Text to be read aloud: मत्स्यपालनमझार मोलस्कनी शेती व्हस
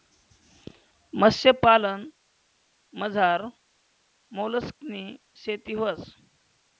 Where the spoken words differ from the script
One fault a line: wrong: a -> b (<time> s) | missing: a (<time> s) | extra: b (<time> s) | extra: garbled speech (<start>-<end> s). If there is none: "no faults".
no faults